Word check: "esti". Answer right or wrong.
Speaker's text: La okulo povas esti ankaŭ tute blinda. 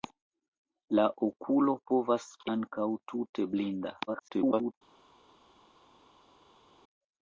wrong